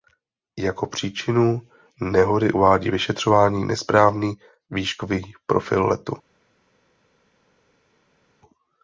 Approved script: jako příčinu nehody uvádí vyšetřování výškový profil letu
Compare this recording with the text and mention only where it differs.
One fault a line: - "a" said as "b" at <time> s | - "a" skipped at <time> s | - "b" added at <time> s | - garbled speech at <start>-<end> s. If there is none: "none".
- "nesprávný" added at 3.6 s